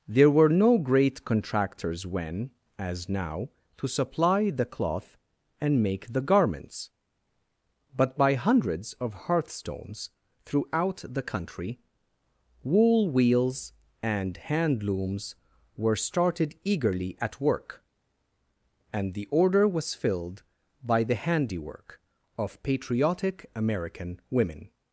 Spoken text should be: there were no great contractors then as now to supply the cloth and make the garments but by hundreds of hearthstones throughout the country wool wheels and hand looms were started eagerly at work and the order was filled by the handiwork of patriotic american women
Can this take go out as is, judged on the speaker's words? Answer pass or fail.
fail